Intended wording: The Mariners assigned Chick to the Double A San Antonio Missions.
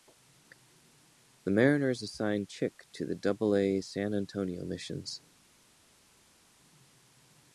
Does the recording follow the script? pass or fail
pass